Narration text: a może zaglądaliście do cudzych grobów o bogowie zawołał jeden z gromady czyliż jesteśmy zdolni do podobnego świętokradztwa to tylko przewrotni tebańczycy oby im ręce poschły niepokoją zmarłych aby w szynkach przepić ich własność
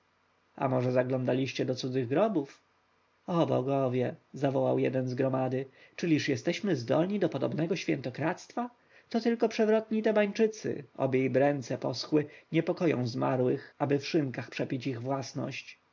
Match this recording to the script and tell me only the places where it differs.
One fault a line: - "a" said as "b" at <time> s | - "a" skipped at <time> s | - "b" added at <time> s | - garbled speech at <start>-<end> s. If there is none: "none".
none